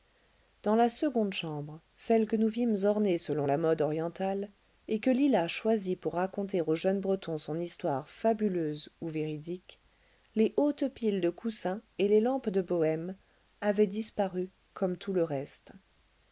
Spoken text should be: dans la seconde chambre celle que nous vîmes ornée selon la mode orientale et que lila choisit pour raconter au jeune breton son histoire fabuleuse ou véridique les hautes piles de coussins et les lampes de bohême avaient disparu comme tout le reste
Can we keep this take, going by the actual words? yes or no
yes